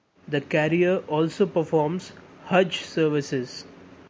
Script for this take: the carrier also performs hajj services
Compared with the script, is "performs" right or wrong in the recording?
right